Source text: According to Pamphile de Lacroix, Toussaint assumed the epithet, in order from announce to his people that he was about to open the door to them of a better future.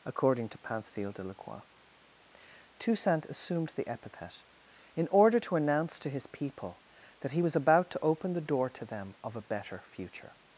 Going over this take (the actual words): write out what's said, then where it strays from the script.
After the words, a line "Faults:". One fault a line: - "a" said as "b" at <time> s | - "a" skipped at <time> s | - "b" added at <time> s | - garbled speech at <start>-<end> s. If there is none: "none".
According to Pamphile de Lacroix, Toussaint assumed the epithet, in order to announce to his people that he was about to open the door to them of a better future.
Faults:
- "from" said as "to" at 5.4 s